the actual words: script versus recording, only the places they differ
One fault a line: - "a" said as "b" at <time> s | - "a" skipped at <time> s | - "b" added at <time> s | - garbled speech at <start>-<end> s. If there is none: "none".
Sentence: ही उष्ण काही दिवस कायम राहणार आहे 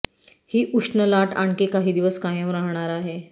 - "लाट आणखी" added at 1.1 s